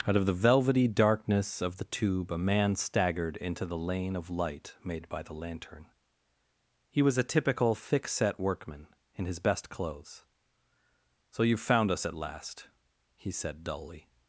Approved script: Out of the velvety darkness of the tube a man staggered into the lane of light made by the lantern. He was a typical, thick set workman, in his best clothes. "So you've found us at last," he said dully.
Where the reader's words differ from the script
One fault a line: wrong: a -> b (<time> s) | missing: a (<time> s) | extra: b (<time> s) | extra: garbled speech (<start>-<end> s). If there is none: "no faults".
no faults